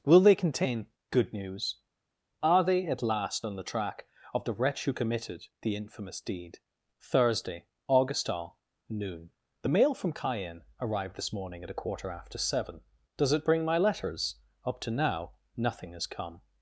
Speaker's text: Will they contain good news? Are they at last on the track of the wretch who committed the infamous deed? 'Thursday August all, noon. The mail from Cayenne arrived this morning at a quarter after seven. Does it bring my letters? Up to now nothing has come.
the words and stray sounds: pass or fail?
pass